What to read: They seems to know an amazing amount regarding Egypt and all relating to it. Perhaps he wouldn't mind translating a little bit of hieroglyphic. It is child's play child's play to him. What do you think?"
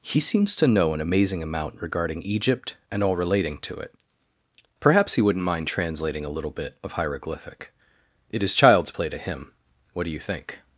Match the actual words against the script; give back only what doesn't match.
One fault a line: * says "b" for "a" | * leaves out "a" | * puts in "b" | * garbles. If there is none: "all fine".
* says "He" for "They"
* leaves out "child's play"